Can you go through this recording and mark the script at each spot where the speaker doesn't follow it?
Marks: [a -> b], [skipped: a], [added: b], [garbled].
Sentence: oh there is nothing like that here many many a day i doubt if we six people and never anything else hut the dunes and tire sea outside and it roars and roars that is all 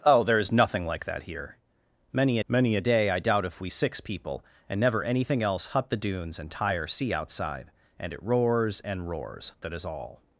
oh there is nothing like that here many many a day i doubt if we six people and never anything else hut the dunes and tire sea outside and it roars and roars that is all